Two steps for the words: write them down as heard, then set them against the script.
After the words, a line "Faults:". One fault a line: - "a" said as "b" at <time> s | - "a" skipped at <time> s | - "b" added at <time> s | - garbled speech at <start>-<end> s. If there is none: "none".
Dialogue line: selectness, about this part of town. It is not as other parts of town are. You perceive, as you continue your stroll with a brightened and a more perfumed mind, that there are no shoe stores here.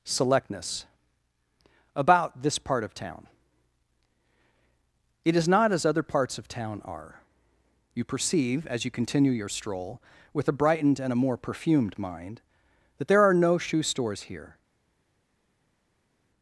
selectness, about this part of town. It is not as other parts of town are. You perceive, as you continue your stroll with a brightened and a more perfumed mind, that there are no shoe stores here.
Faults:
none